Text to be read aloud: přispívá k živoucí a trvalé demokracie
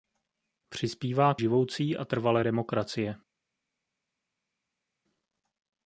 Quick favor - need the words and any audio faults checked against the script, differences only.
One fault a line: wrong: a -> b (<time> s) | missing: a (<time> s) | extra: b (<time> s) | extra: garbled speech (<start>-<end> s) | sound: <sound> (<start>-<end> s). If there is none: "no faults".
no faults